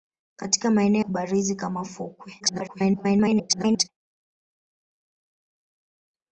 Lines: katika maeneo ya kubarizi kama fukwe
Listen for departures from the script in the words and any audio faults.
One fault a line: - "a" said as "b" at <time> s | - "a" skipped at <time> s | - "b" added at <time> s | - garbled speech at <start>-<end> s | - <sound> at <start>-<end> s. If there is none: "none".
- "ya" skipped at 1.0 s
- garbled speech at 2.4-3.9 s